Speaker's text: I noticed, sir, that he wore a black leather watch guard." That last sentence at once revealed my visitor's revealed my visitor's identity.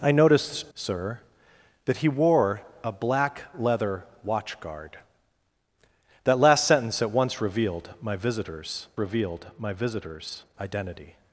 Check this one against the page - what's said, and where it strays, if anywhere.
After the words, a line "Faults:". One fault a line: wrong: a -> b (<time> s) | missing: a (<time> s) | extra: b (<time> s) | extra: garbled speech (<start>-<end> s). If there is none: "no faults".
I noticed, sir, that he wore a black leather watch guard." That last sentence at once revealed my visitor's revealed my visitor's identity.
Faults:
no faults